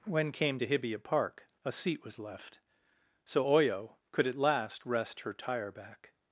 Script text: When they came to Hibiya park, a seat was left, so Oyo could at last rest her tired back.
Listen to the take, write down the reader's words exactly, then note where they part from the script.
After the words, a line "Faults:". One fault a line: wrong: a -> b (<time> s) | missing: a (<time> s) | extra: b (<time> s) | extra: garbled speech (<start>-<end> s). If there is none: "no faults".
When came to Hibiya park, a seat was left, so Oyo could at last rest her tire back.
Faults:
missing: they (0.3 s)
wrong: tired -> tire (5.3 s)